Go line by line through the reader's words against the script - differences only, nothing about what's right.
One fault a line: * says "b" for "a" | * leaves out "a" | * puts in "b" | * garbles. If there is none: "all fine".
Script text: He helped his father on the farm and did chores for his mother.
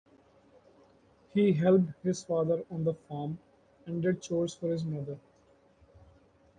all fine